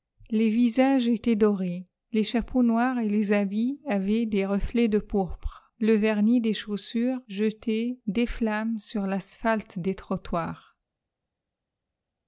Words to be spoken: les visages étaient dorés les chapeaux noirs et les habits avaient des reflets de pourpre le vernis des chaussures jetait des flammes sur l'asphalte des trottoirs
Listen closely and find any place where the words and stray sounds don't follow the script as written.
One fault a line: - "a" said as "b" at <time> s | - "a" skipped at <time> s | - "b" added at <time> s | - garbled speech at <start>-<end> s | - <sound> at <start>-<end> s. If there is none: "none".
none